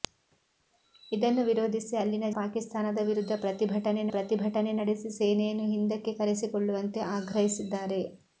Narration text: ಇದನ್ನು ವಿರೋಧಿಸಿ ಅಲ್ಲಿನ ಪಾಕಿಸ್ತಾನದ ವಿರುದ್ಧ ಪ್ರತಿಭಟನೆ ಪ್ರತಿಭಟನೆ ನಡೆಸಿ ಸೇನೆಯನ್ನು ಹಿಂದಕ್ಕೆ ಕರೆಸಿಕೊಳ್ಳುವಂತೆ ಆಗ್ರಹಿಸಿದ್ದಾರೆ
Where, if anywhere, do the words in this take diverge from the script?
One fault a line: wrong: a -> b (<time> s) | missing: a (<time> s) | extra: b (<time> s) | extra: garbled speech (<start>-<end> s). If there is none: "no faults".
no faults